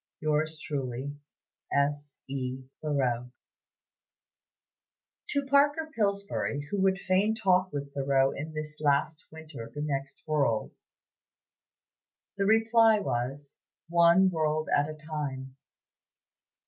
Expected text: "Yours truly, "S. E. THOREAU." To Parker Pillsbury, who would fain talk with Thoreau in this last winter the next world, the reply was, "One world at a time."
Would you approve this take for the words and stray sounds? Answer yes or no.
yes